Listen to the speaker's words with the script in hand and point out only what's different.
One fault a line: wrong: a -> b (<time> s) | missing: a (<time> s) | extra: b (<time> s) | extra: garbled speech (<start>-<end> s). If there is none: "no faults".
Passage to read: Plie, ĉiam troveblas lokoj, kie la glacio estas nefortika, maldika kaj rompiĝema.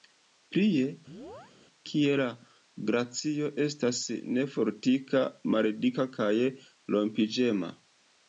missing: ĉiam troveblas lokoj (0.8 s)